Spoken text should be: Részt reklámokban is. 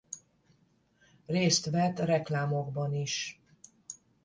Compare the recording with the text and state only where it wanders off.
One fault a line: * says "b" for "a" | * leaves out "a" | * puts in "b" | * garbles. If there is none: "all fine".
* puts in "vett"